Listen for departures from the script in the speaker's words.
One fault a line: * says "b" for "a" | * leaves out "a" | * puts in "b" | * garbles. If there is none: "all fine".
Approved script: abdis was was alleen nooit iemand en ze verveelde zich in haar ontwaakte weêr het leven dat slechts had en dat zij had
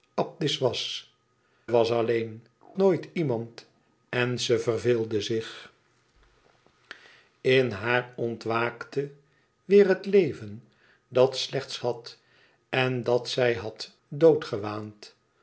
all fine